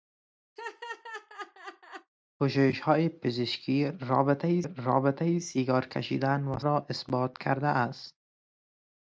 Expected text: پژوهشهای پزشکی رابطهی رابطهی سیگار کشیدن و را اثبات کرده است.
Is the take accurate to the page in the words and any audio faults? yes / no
no